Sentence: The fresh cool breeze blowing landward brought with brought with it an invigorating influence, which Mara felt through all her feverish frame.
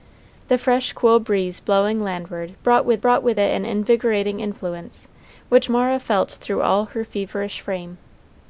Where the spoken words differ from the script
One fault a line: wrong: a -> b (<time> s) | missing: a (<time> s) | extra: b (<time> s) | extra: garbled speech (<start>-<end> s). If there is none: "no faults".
no faults